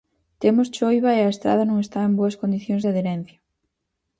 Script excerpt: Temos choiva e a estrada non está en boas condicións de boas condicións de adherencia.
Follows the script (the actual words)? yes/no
no